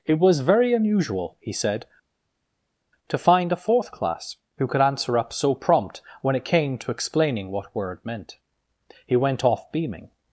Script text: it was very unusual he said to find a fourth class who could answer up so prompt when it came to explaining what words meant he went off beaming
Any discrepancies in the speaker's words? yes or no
yes